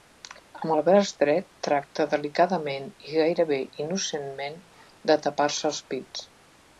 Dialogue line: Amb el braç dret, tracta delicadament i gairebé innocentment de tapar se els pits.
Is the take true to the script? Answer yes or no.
yes